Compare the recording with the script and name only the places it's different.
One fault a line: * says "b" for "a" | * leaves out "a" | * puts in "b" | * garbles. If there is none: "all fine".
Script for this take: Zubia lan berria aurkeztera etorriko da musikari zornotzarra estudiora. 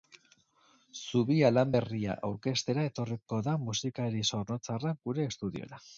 * puts in "gure"